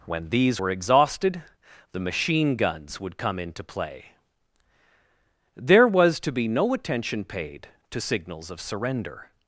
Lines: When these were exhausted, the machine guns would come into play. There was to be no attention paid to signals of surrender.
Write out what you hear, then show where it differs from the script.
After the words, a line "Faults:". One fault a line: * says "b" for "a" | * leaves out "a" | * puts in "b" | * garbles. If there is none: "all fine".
When these were exhausted, the machine guns would come into play. There was to be no attention paid to signals of surrender.
Faults:
all fine